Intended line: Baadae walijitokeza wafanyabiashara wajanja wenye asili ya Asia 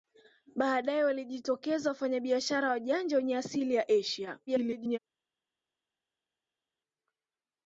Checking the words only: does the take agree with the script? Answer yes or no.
no